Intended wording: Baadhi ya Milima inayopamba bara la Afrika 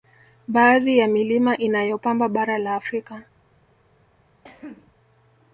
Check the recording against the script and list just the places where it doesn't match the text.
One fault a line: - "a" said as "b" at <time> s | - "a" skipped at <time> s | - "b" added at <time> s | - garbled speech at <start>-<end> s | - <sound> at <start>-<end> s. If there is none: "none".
- cough at 4.4-4.9 s